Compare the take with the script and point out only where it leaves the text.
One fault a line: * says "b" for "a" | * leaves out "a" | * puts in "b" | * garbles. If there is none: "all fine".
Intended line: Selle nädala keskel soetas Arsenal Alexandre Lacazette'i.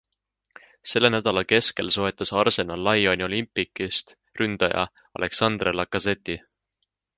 * puts in "Lyoni Olympique'ist ründaja"